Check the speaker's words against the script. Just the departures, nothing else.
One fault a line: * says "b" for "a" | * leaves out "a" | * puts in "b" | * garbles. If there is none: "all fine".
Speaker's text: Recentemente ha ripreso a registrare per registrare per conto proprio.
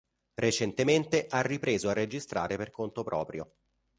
* leaves out "registrare per"